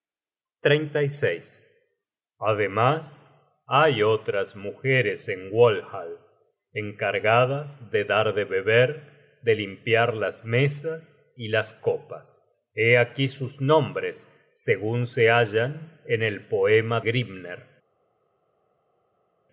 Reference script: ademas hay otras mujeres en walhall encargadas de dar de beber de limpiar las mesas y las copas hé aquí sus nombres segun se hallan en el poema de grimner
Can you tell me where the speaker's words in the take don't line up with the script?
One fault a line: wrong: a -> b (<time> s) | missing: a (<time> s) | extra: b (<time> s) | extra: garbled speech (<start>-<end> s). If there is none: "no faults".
missing: de (17.0 s)